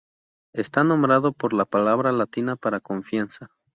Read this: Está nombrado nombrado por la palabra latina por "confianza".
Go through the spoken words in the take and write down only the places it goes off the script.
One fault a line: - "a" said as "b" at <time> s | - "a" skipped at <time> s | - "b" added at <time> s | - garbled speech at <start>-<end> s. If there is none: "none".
- "nombrado" skipped at 1.3 s
- "por" said as "para" at 2.5 s